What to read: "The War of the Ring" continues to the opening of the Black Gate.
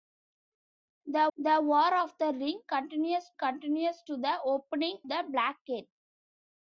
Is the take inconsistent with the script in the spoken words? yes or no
yes